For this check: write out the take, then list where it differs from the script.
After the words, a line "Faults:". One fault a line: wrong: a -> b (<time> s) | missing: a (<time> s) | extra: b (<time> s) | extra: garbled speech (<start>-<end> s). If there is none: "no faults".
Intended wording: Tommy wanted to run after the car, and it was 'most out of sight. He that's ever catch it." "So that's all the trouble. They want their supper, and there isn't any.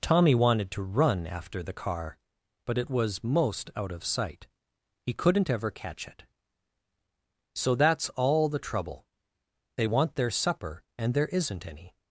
Tommy wanted to run after the car, but it was 'most out of sight. He couldn't ever catch it." "So that's all the trouble. They want their supper, and there isn't any.
Faults:
wrong: and -> but (2.7 s)
wrong: that's -> couldn't (5.1 s)